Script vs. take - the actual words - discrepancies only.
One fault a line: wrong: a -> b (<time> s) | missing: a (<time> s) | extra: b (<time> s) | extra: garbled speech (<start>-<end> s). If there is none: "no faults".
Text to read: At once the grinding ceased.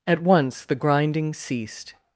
no faults